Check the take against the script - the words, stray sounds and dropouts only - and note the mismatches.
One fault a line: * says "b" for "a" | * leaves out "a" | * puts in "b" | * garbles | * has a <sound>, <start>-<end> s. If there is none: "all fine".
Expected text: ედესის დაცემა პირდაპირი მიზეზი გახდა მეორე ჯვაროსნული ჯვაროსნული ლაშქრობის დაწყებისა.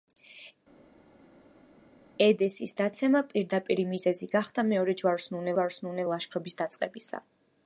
all fine